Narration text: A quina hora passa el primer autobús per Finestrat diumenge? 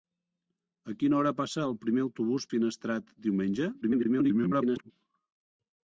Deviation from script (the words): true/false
true